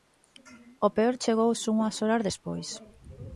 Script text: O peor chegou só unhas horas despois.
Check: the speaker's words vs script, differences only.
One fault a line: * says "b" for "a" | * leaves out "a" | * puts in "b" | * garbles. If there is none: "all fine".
all fine